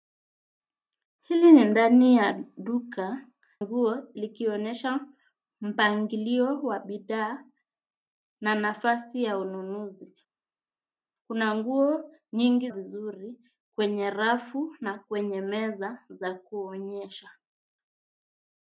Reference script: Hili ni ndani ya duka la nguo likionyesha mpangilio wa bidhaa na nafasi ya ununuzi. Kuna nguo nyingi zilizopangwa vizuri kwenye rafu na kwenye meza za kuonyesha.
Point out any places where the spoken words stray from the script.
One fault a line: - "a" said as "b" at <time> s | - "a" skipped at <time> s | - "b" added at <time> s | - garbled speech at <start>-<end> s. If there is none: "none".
- "la" skipped at 3.3 s
- "zilizopangwa" skipped at 12.7 s